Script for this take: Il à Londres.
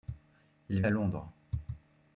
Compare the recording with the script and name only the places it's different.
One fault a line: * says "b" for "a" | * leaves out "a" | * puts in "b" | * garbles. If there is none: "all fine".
all fine